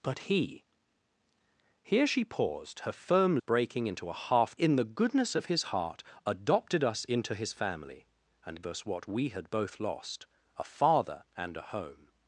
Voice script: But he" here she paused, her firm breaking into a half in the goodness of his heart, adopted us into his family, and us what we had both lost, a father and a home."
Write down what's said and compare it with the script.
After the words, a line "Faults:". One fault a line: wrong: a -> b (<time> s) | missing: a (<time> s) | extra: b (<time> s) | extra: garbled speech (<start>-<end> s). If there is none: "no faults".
But he" here she paused, her firm breaking into a half in the goodness of his heart, adopted us into his family, and us what we had both lost, a father and a home."
Faults:
no faults